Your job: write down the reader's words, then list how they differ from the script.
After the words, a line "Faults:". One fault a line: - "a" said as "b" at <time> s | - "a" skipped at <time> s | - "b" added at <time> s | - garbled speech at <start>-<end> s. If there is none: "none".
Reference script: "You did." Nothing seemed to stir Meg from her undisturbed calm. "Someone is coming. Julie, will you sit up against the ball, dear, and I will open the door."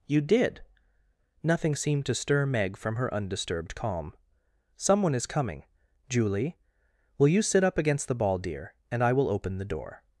"You did." Nothing seemed to stir Meg from her undisturbed calm. "Someone is coming. Julie, will you sit up against the ball, dear, and I will open the door."
Faults:
none